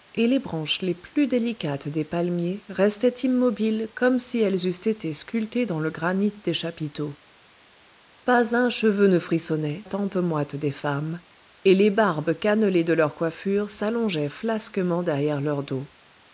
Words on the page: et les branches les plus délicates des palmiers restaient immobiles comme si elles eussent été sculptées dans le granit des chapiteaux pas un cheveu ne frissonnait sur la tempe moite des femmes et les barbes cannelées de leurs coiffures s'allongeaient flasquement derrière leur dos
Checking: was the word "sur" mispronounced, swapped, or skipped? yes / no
yes